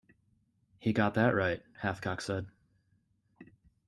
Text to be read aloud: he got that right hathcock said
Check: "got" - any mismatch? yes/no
no